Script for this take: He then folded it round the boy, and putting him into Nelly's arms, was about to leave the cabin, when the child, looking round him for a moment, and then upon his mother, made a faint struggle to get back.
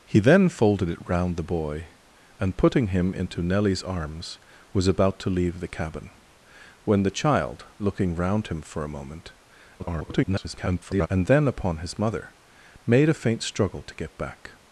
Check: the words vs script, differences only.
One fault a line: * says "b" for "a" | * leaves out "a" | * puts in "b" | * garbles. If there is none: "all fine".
* garbles